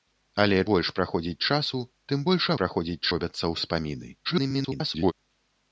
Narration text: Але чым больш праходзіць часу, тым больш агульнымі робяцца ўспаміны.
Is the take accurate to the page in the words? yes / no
no